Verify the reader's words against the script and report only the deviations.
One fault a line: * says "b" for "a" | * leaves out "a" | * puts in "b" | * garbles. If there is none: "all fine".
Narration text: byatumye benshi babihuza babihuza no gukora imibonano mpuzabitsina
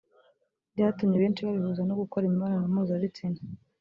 * leaves out "babihuza"